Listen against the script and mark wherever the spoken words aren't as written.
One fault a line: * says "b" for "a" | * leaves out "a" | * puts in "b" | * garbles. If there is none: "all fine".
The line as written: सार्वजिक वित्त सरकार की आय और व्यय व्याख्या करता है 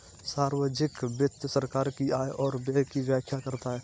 * puts in "की"